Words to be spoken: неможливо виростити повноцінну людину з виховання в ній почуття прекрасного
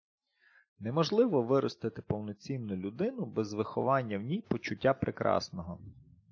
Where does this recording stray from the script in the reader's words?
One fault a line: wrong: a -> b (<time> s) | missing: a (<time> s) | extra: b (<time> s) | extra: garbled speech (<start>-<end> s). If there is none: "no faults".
wrong: з -> без (3.2 s)